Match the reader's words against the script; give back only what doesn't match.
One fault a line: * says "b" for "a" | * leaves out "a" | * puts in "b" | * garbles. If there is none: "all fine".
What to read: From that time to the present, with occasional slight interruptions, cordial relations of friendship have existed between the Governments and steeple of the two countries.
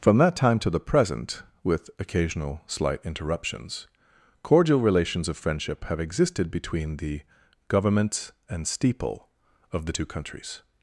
all fine